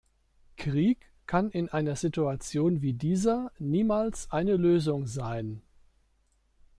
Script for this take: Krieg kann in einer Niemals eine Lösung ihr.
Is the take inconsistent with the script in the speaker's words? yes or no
yes